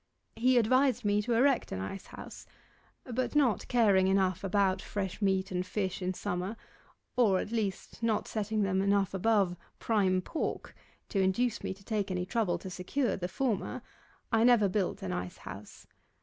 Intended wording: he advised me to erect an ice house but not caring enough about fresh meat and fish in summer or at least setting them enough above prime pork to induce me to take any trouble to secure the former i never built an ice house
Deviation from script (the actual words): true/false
true